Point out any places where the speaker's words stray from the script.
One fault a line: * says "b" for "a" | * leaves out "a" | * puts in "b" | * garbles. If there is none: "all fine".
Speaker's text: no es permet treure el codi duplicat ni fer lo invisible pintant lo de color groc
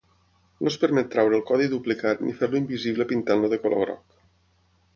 all fine